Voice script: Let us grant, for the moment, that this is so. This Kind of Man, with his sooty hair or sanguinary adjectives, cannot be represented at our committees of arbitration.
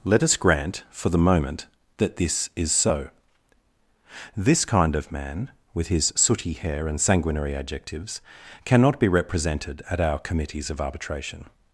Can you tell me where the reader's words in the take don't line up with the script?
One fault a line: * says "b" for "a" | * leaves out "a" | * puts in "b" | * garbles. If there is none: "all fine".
* says "and" for "or"